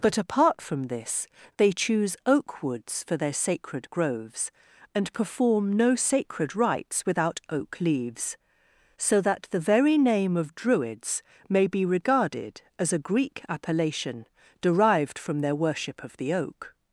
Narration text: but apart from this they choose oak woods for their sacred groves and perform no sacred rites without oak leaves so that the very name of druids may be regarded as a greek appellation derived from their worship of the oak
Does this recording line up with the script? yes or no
yes